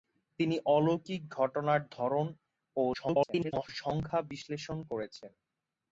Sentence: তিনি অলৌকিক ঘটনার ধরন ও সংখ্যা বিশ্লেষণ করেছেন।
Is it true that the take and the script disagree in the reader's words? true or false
true